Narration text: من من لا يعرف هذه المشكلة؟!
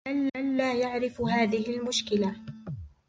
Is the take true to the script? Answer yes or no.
yes